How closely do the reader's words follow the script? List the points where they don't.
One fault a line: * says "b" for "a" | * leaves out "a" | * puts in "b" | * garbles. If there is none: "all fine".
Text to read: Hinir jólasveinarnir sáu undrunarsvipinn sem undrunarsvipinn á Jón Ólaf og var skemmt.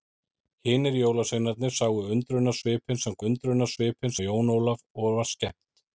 all fine